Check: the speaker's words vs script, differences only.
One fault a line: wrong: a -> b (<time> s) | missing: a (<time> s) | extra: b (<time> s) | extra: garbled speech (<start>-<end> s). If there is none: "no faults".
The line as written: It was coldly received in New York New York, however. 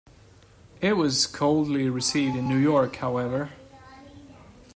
missing: New York (3.0 s)